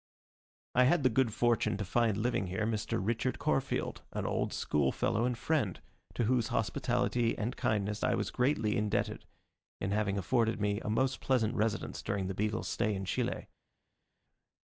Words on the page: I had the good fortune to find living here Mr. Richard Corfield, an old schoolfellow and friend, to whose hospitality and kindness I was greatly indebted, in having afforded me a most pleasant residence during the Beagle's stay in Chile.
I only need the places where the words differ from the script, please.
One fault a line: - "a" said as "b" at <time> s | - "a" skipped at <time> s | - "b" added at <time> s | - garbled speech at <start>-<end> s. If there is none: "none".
none